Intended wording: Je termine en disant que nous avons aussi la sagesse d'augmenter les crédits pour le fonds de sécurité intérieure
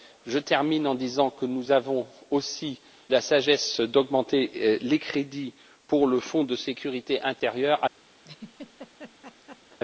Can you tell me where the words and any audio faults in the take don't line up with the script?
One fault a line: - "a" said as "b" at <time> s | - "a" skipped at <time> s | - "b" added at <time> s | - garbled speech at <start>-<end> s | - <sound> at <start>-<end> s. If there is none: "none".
- laugh at 8.2-9.8 s